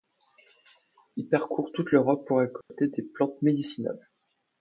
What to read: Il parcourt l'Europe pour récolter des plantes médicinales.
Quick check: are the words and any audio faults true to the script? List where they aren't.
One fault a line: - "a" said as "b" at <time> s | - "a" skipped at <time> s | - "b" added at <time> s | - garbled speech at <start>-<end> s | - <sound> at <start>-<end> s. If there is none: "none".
- "toute" added at 1.7 s
- dropout at 2.6-2.7 s